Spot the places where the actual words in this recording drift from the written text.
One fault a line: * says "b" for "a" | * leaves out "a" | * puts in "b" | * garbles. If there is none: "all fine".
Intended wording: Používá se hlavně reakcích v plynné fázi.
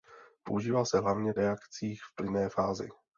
all fine